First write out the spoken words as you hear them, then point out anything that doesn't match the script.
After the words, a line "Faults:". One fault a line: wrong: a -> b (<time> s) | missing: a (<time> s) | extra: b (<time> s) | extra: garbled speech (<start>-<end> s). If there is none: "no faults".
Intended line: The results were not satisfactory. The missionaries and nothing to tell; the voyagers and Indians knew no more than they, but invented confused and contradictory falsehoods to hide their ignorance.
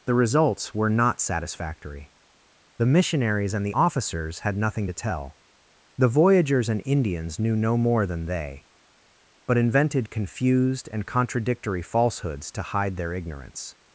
The results were not satisfactory. The missionaries and the officers had nothing to tell; the voyagers and Indians knew no more than they, but invented confused and contradictory falsehoods to hide their ignorance.
Faults:
extra: the officers had (3.6 s)